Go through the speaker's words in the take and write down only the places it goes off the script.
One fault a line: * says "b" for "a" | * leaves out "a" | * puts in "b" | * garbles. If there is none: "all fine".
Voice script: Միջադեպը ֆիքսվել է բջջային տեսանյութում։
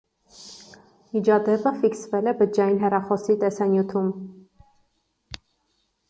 * puts in "հեռախոսի"